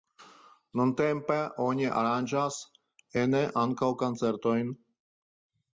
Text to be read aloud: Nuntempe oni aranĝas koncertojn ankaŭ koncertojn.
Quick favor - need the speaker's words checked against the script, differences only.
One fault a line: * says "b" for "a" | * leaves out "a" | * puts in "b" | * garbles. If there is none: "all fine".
* says "ene" for "koncertojn"